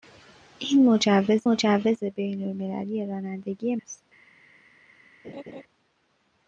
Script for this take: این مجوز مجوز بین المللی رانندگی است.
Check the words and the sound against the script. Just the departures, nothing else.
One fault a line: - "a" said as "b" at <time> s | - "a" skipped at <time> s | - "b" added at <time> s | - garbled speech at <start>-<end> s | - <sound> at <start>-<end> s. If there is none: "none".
- laugh at 5.2-5.6 s